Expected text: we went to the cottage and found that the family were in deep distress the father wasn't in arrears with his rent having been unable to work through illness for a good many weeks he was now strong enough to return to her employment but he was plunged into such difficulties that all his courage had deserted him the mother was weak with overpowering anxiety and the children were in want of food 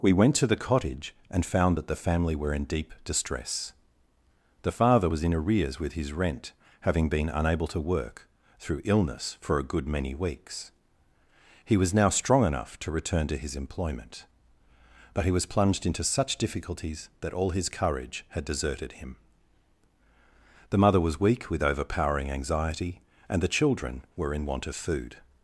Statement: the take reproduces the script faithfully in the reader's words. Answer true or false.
false